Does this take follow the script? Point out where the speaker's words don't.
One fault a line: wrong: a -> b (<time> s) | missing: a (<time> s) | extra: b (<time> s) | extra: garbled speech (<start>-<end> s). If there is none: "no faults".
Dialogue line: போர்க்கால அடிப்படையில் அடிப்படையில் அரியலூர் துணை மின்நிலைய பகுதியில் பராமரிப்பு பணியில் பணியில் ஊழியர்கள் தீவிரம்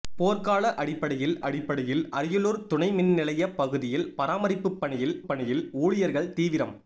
no faults